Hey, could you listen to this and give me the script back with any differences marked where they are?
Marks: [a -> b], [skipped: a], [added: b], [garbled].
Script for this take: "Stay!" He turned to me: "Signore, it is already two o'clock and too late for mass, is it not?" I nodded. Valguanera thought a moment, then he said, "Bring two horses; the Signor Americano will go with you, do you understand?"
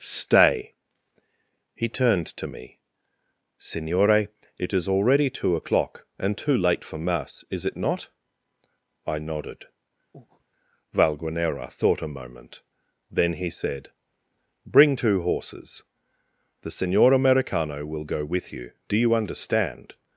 "Stay!" He turned to me: "Signore, it is already two o'clock and too late for mass, is it not?" I nodded. Valguanera thought a moment, then he said, "Bring two horses; the Signor Americano will go with you, do you understand?"